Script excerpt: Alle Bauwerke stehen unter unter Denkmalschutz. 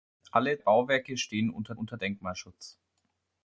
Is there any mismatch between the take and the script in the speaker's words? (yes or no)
no